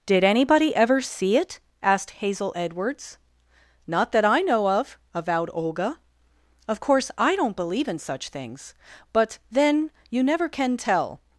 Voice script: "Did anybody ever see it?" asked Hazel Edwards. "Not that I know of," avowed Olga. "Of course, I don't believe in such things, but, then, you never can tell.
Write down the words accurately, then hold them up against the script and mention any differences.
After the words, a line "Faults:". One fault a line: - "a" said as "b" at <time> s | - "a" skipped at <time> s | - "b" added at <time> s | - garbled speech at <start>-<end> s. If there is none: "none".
"Did anybody ever see it?" asked Hazel Edwards. "Not that I know of," avowed Olga. "Of course, I don't believe in such things, but, then, you never can tell.
Faults:
none